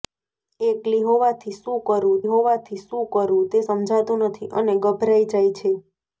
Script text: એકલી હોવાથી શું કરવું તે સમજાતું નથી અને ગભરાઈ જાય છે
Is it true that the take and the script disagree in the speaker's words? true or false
true